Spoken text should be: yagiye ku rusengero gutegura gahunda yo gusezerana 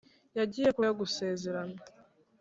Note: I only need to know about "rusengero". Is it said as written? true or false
false